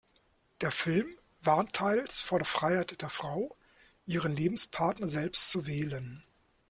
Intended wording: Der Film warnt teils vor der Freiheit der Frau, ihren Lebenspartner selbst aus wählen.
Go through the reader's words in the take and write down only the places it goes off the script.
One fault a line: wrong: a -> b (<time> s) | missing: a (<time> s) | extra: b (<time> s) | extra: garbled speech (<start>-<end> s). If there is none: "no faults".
wrong: aus -> zu (5.5 s)